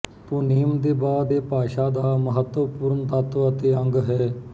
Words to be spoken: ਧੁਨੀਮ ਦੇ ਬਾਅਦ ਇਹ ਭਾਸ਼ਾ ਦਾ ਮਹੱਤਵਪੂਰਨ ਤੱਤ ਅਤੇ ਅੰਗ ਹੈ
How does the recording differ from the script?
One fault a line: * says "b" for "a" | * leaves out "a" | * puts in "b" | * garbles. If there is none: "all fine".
all fine